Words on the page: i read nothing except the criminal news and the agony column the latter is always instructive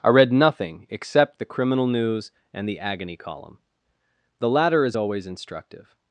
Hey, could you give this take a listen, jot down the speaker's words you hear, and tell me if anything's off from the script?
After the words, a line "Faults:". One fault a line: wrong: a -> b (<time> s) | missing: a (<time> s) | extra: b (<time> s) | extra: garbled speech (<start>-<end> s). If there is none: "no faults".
i read nothing except the criminal news and the agony column the latter is always instructive
Faults:
no faults